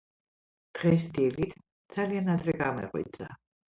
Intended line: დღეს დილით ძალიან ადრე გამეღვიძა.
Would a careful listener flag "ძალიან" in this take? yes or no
no